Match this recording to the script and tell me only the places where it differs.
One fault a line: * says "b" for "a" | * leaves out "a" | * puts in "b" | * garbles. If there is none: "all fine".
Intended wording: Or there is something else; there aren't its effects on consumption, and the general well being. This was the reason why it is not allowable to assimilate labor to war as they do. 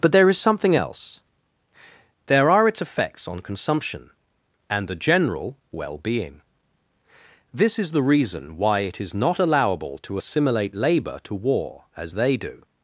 * says "But" for "Or"
* says "are" for "aren't"
* says "is" for "was"